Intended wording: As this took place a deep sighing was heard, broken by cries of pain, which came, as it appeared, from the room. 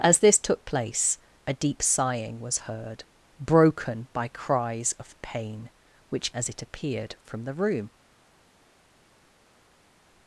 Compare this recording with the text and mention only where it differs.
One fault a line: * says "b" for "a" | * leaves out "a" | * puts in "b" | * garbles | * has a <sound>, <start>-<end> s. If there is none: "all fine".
* leaves out "came"